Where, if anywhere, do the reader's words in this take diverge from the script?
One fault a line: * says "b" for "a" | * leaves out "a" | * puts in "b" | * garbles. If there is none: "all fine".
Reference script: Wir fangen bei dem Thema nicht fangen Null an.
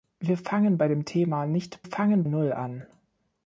all fine